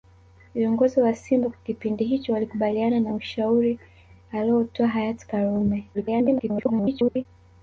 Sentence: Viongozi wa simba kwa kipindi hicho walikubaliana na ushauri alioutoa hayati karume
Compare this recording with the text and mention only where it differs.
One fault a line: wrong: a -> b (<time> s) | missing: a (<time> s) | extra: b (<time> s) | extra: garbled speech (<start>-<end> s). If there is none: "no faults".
extra: garbled speech (5.9-7.3 s)